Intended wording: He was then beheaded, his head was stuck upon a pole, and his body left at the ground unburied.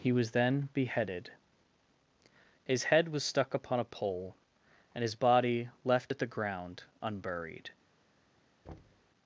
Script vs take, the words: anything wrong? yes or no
no